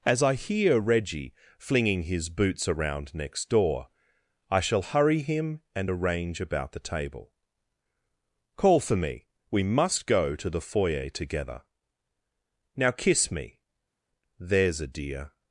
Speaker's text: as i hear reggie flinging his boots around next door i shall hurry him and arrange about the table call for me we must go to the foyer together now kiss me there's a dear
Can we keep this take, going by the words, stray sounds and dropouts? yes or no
yes